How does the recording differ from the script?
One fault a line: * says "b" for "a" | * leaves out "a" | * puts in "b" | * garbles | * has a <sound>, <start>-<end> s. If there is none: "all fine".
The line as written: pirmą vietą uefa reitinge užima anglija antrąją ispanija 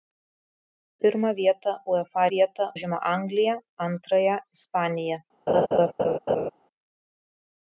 * says "vietą" for "reitinge"
* has a laugh, 5.5-6.5 s